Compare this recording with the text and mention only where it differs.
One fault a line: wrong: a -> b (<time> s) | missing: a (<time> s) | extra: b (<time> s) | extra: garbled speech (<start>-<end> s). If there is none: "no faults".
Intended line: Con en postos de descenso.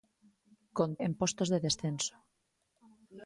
no faults